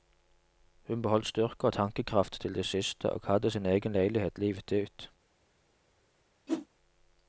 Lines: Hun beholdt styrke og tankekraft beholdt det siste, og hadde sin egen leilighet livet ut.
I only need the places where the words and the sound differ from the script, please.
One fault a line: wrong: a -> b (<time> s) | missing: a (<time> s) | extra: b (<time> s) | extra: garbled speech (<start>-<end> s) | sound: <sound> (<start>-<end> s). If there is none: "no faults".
wrong: beholdt -> til (2.4 s)
sound: whoosh (6.5-6.7 s)